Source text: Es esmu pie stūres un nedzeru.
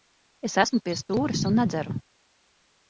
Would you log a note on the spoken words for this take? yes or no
no